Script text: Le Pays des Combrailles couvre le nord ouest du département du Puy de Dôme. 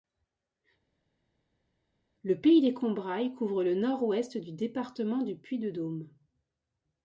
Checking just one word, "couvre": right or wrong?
right